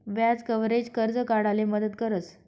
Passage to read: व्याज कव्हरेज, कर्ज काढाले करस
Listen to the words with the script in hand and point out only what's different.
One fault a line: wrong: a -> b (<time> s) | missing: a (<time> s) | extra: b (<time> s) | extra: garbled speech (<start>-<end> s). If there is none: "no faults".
extra: मदत (1.6 s)